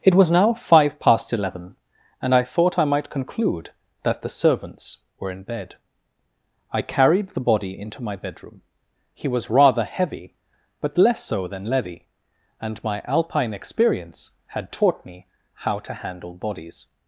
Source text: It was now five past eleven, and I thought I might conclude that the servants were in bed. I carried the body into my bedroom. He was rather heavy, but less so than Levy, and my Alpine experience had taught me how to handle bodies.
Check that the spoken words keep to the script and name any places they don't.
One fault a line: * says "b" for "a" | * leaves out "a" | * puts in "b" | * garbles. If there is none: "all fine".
all fine